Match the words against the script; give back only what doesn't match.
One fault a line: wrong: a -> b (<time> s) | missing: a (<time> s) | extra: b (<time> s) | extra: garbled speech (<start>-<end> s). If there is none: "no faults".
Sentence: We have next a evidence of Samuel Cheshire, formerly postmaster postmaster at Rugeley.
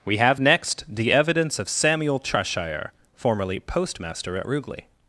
wrong: a -> the (0.9 s)
missing: postmaster (4.4 s)